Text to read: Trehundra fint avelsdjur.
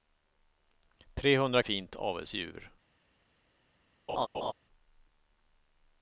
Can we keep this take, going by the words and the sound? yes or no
no